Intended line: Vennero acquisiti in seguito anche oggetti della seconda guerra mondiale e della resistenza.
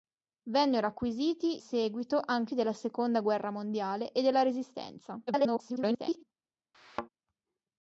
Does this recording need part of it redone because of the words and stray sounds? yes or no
yes